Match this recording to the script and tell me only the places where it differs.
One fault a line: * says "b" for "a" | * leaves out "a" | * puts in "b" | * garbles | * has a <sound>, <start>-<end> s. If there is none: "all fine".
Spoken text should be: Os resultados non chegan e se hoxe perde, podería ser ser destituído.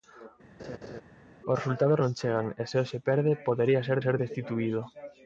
* has a laugh, 0.6-1.0 s